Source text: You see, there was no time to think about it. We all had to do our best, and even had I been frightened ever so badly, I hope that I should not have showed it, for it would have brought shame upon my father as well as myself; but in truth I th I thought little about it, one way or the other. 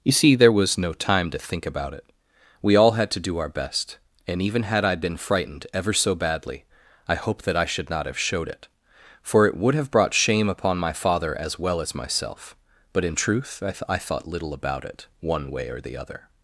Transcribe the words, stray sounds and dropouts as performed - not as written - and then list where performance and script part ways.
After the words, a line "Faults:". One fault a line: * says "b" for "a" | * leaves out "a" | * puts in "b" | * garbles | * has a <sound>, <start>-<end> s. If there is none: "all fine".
You see, there was no time to think about it. We all had to do our best, and even had I been frightened ever so badly, I hope that I should not have showed it, for it would have brought shame upon my father as well as myself; but in truth I th I thought little about it, one way or the other.
Faults:
all fine